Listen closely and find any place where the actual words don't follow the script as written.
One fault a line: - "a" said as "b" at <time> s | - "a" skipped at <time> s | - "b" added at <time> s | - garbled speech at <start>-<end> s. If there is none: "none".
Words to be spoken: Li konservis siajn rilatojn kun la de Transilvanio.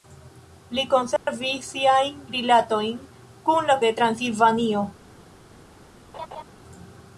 none